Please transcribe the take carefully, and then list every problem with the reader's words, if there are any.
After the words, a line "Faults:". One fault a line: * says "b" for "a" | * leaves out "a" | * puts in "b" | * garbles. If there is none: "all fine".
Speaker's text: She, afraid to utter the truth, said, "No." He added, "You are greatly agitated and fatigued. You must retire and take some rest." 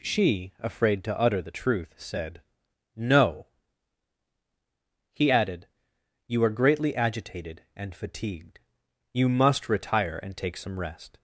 She, afraid to utter the truth, said, "No." He added, "You are greatly agitated and fatigued. You must retire and take some rest."
Faults:
all fine